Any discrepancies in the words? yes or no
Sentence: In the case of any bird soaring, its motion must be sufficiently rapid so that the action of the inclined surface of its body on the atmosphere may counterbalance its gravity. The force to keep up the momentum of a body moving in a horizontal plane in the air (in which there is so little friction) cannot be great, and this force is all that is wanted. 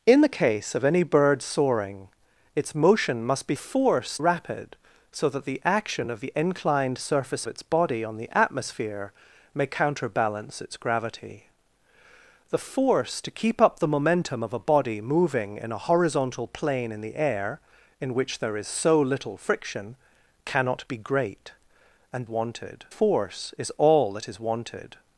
yes